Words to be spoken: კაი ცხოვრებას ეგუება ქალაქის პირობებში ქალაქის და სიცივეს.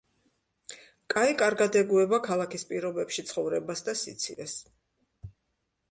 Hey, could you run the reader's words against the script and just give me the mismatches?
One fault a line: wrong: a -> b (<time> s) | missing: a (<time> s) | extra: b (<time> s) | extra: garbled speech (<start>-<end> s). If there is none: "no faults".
wrong: ცხოვრებას -> კარგად (1.4 s)
wrong: ქალაქის -> ცხოვრებას (3.3 s)